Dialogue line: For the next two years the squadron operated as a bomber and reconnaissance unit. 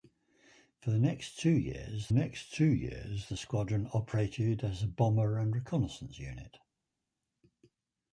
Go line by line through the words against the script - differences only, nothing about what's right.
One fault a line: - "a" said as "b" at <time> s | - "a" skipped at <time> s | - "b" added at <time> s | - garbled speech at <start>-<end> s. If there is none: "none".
- "next two years" added at 2.1 s